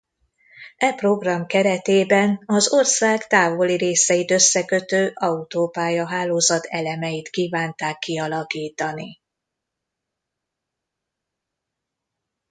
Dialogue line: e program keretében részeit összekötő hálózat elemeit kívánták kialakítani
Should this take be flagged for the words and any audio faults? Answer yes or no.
yes